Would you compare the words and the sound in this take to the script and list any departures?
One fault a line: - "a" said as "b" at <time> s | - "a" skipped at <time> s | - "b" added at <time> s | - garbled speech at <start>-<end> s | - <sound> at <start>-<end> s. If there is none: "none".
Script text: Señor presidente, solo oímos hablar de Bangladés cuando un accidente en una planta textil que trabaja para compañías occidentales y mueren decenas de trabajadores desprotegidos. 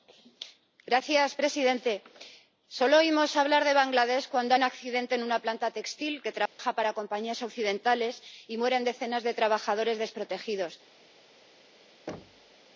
- dropout at 6.5-6.6 s
- thud at 12.1-12.6 s